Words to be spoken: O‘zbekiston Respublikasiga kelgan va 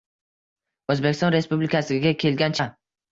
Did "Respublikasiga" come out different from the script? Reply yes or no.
no